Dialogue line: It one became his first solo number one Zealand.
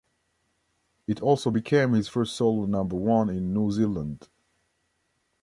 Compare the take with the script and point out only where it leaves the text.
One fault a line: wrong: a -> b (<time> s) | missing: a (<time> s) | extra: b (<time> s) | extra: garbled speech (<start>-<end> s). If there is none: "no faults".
wrong: one -> also (1.2 s)
extra: in New (3.3 s)